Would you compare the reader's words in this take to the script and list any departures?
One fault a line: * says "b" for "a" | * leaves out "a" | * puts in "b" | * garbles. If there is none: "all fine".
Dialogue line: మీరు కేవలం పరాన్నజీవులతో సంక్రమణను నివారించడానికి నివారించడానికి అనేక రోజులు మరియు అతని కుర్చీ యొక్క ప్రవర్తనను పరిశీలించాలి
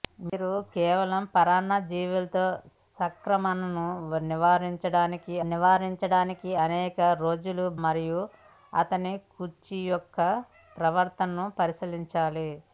all fine